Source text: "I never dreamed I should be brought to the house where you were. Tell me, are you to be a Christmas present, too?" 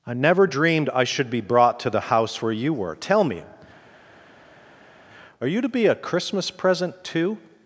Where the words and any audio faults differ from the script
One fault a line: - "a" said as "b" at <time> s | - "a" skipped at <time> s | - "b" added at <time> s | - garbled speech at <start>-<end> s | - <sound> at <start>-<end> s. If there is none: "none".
none